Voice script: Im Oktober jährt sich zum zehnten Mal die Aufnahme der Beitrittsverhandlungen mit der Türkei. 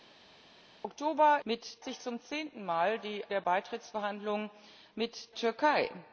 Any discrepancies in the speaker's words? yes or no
yes